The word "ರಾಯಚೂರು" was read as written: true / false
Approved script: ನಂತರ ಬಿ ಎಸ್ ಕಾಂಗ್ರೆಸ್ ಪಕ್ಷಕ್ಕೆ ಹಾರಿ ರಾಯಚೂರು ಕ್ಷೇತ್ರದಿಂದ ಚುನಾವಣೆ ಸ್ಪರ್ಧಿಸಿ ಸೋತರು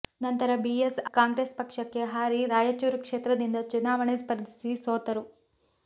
true